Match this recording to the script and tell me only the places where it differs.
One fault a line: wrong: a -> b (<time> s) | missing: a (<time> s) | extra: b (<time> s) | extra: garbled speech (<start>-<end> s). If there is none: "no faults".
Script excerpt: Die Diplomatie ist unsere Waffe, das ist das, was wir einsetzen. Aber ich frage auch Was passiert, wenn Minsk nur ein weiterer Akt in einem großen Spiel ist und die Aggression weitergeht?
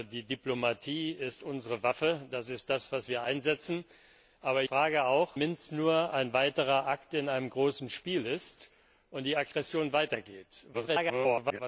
missing: ich (4.6 s)
missing: Was passiert wenn (5.4 s)
extra: garbled speech (10.7-11.6 s)